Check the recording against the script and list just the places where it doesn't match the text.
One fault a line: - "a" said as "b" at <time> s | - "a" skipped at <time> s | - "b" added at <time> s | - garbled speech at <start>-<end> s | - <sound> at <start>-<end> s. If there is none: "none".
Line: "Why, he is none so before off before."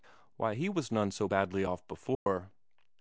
- "is" said as "was" at 0.7 s
- "before" said as "badly" at 1.2 s
- dropout at 2.1-2.3 s